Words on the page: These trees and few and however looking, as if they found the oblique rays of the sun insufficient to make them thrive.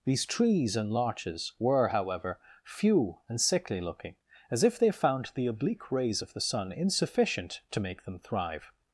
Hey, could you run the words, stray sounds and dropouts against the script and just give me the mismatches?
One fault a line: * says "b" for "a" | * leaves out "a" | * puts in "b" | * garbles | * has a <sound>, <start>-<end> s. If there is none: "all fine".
* puts in "larches were however"
* says "sickly" for "however"